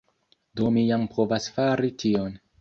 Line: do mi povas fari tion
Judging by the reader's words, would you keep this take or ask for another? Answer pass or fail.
fail